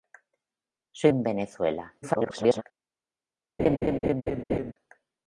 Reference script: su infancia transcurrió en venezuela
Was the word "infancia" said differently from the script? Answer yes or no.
yes